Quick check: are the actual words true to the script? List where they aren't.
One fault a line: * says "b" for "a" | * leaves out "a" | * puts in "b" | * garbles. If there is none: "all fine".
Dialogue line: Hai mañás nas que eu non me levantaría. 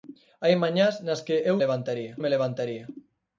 * says "levantaría" for "non"